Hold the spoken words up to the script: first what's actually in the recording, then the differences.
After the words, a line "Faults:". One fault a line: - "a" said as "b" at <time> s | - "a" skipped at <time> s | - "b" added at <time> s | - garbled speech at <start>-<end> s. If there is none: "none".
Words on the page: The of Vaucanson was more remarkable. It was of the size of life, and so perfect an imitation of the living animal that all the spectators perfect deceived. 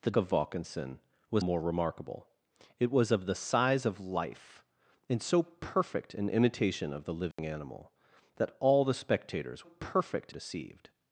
The of Vaucanson was more remarkable. It was of the size of life, and so perfect an imitation of the living animal that all the spectators perfect deceived.
Faults:
none